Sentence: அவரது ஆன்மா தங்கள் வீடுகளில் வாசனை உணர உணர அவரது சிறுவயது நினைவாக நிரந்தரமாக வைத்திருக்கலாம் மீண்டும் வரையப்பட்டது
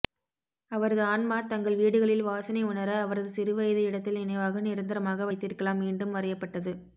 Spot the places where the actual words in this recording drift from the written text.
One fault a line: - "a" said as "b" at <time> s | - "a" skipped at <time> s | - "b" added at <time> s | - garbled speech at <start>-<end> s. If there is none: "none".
- "உணர" skipped at 2.9 s
- "இடத்தில்" added at 3.8 s